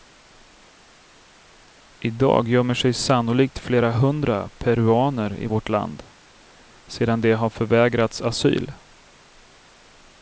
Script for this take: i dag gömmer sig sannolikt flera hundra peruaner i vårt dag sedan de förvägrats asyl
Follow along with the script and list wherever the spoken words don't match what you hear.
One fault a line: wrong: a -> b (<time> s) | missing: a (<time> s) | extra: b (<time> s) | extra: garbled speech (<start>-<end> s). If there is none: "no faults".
wrong: dag -> land (5.7 s)
extra: har (7.3 s)